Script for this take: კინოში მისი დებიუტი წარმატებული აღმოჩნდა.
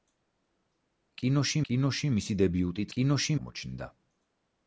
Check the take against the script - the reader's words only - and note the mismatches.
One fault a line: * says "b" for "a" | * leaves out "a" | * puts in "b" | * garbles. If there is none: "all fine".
* puts in "კინოში"
* says "კინოში" for "წარმატებული"